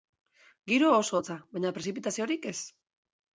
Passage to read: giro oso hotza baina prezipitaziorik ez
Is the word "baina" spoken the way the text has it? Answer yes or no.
yes